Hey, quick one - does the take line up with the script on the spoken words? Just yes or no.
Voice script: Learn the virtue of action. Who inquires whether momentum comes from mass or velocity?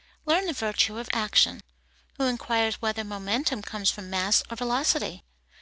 yes